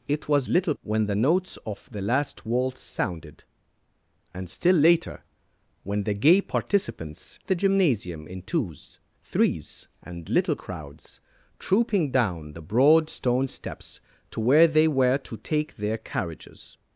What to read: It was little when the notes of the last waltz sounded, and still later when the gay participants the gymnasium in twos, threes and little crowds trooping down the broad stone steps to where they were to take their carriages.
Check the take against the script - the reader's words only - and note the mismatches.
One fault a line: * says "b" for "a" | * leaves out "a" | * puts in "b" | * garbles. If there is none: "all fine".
all fine